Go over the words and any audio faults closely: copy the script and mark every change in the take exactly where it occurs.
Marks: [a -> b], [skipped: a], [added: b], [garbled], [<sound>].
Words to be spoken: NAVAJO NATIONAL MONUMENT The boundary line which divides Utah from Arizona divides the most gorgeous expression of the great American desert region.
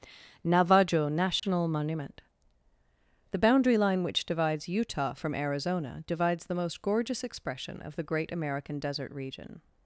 NAVAJO NATIONAL [dropout] MONUMENT The boundary line which divides Utah from Arizona divides the most gorgeous expression of the great American desert region.